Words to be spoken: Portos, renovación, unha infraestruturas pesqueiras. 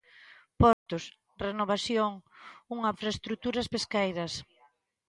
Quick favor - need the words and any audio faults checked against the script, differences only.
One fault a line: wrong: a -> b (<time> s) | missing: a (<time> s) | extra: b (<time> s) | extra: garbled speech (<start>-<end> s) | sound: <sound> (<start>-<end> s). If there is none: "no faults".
sound: dropout (0.7-0.9 s)